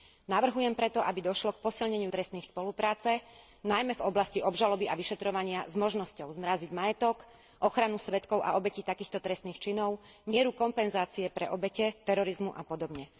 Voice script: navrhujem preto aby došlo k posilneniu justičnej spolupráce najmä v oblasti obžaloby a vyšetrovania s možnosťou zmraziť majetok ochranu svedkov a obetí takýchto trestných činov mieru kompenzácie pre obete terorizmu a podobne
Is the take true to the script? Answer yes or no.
no